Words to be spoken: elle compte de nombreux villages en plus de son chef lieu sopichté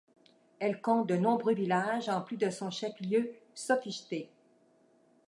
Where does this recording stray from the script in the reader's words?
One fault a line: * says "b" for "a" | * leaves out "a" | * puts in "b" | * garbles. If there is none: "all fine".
all fine